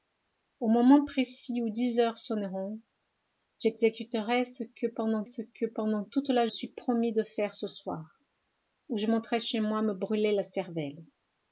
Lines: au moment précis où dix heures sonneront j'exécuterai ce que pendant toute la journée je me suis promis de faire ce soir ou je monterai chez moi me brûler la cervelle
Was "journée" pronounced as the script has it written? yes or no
no